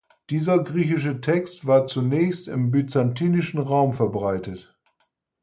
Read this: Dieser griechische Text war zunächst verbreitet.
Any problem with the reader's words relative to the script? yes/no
yes